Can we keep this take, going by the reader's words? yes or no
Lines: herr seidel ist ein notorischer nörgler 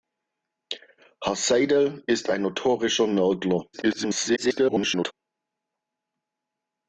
no